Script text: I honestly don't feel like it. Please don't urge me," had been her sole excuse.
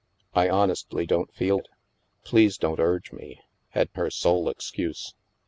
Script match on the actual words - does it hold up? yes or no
no